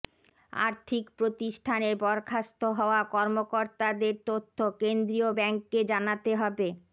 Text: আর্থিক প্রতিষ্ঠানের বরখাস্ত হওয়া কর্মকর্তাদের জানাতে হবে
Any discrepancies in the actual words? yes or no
yes